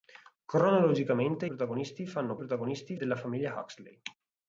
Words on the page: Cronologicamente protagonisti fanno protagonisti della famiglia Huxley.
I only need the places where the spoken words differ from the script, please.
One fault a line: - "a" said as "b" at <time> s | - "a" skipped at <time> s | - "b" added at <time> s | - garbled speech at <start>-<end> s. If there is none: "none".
none